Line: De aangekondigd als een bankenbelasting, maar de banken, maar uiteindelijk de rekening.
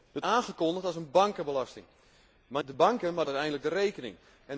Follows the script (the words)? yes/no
yes